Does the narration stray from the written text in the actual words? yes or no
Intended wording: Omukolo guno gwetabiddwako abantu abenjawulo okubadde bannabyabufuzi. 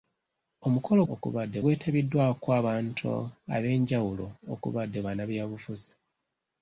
yes